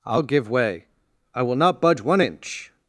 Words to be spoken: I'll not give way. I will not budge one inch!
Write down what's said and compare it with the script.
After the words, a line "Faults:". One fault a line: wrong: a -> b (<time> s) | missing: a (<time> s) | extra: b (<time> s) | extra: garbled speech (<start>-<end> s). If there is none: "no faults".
I'll give way. I will not budge one inch!
Faults:
missing: not (0.2 s)